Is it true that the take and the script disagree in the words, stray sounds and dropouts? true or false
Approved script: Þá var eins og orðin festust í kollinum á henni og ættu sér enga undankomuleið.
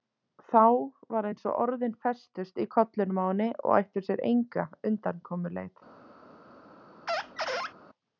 true